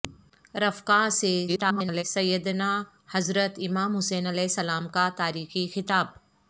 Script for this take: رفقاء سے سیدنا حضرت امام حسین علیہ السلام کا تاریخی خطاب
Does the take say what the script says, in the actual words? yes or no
no